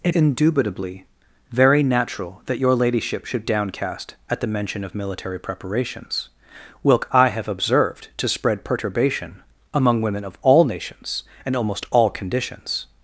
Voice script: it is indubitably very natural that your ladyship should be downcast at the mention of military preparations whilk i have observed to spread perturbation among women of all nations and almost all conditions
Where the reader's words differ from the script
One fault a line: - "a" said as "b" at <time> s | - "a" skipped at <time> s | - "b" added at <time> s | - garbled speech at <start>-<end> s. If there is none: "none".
- "is" skipped at 0.1 s
- "be" skipped at 3.4 s